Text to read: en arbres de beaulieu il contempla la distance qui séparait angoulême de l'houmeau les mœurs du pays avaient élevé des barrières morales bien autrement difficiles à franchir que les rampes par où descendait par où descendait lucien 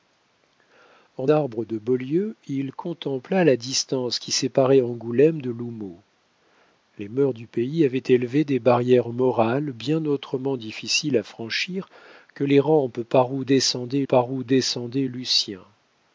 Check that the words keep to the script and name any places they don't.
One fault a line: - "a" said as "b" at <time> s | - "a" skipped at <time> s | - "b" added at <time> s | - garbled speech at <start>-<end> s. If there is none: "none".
none